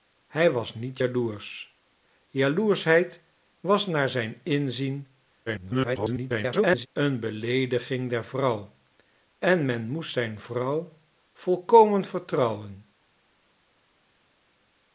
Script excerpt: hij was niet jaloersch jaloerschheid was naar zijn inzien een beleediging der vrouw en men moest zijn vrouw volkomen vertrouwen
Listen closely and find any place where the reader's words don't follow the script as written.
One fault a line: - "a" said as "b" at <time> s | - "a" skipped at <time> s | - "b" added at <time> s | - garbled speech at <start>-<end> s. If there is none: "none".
- garbled speech at 5.5-6.9 s